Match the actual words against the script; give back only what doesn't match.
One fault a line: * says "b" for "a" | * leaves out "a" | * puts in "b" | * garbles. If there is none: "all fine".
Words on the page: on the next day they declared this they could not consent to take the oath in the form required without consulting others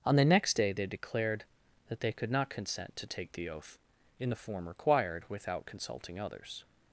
* says "that" for "this"